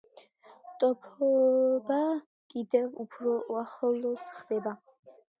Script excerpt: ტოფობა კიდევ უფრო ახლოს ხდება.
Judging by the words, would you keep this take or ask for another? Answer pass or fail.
pass